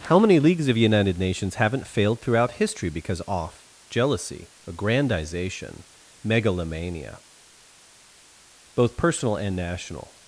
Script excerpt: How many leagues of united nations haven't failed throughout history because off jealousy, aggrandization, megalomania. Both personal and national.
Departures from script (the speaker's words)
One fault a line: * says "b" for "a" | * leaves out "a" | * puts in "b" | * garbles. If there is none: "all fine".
all fine